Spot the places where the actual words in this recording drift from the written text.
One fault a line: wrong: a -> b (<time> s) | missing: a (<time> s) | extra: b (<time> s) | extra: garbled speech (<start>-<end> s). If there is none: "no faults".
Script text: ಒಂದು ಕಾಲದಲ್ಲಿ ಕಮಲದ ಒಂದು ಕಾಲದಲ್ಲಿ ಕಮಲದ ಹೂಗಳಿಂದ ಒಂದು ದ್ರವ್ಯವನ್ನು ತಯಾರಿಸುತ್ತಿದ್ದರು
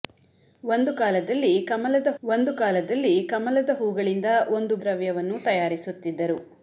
no faults